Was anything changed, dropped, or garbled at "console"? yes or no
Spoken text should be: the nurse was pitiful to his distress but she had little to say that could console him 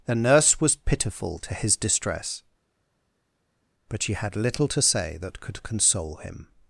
no